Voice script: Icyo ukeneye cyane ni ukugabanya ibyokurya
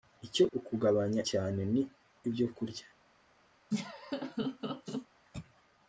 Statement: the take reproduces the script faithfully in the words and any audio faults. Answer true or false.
false